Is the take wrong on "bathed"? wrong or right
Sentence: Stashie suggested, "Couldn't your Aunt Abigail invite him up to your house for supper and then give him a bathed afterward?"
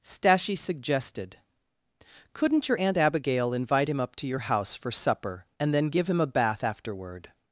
wrong